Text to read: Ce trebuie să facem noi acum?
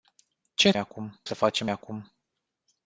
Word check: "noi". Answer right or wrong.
wrong